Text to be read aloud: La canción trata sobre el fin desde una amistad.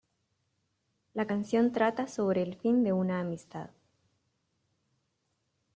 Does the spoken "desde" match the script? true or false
false